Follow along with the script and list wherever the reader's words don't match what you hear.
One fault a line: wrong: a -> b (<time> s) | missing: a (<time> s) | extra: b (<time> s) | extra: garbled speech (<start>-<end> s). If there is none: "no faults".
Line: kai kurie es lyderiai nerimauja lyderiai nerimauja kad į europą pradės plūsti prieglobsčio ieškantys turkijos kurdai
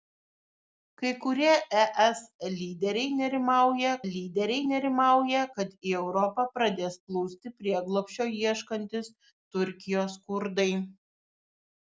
no faults